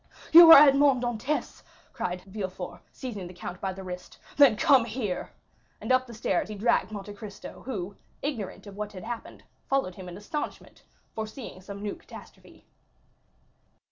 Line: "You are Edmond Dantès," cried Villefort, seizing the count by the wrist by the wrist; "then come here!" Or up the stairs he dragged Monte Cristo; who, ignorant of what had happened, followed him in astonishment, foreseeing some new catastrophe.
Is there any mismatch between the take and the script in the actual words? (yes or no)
yes